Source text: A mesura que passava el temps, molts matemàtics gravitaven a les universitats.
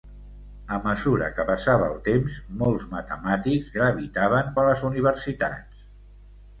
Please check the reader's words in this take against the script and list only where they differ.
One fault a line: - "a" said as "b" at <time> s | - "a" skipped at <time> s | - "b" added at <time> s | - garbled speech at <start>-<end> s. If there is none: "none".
none